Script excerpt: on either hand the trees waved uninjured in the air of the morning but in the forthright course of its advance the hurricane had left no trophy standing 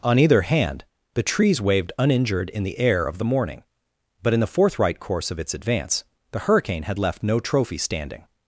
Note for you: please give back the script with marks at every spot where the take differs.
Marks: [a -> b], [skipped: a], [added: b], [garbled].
on either hand the trees waved uninjured in the air of the morning but in the forthright course of its advance the hurricane had left no trophy standing